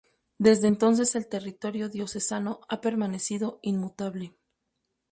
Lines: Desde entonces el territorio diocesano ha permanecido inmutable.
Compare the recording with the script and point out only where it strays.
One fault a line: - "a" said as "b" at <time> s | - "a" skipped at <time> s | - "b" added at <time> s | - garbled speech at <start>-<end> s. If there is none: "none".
none